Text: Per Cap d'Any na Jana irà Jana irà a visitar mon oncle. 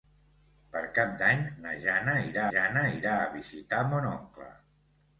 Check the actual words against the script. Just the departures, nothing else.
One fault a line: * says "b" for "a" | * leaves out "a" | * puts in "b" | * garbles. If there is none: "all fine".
all fine